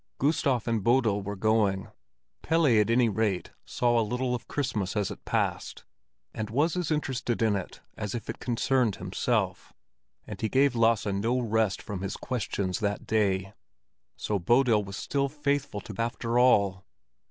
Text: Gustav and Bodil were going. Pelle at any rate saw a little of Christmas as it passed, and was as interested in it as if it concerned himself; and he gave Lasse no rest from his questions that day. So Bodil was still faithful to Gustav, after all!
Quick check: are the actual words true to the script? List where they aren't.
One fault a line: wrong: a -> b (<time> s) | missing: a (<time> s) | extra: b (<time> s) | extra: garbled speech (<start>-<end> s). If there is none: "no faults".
missing: Gustav (15.9 s)